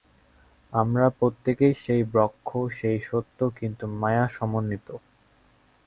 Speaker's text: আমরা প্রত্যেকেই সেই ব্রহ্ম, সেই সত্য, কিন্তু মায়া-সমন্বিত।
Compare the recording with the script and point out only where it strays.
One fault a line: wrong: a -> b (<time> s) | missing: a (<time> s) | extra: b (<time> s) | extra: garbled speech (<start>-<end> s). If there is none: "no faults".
no faults